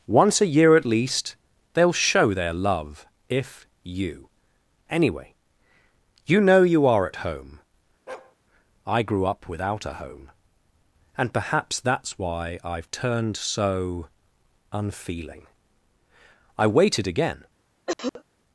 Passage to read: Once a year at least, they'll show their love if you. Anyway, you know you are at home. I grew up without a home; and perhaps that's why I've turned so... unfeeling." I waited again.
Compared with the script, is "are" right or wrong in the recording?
right